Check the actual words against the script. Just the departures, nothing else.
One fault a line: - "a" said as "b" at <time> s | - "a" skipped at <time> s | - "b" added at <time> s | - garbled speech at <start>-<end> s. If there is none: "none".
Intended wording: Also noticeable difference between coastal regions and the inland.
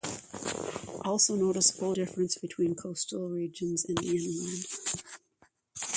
none